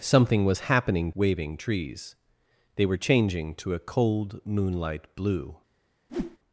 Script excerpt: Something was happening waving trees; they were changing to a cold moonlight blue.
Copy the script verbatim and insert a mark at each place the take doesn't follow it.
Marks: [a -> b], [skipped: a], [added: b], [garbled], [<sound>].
Something was happening waving trees; they were changing to a cold moonlight blue. [whoosh]